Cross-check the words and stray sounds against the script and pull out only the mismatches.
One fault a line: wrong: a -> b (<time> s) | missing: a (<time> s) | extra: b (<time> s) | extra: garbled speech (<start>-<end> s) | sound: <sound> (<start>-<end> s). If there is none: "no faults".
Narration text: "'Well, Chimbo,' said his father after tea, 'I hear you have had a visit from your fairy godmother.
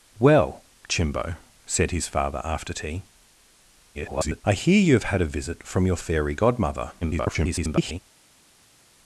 extra: garbled speech (3.9-4.4 s)
extra: garbled speech (7.0-8.0 s)